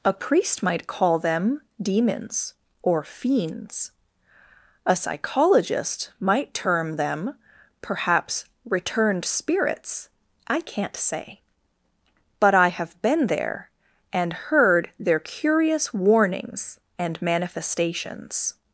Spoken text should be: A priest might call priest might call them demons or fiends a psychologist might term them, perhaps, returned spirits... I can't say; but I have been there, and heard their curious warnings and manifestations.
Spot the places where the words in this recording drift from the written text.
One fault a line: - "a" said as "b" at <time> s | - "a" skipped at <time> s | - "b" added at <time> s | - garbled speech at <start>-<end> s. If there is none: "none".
- "priest might call" skipped at 1.2 s